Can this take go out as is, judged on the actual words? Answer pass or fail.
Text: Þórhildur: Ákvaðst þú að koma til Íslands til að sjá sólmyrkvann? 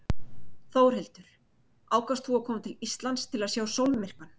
pass